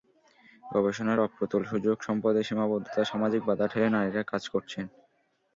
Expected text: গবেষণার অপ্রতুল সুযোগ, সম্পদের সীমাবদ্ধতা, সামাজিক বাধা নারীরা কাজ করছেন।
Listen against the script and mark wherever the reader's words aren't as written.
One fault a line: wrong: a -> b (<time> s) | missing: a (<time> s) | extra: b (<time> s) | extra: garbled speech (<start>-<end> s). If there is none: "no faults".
extra: ঠেলে (3.7 s)